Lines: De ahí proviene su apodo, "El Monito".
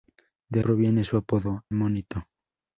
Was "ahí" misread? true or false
true